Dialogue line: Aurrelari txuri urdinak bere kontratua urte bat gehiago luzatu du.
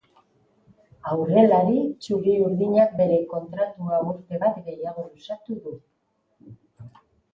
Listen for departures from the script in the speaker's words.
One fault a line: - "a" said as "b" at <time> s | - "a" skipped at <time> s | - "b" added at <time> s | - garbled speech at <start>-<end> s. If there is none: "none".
none